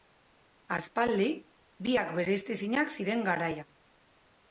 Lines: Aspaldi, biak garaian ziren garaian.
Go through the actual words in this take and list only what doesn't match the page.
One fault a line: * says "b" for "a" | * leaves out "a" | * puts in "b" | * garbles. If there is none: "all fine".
* says "bereiztezinak" for "garaian"